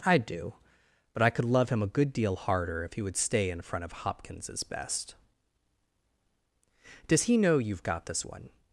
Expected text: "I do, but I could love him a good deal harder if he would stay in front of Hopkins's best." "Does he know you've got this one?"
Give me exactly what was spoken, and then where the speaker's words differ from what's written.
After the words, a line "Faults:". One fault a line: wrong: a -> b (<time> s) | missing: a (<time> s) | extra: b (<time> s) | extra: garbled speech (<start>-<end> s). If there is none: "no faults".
"I do, but I could love him a good deal harder if he would stay in front of Hopkins's best." "Does he know you've got this one?"
Faults:
no faults